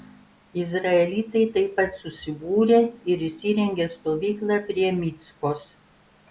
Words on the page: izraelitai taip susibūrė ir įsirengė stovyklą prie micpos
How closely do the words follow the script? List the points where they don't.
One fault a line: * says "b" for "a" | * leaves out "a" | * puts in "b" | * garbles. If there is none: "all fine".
* puts in "pat"